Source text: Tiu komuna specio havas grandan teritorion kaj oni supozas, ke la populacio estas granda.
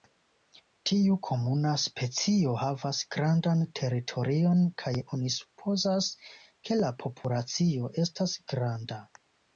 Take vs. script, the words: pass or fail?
pass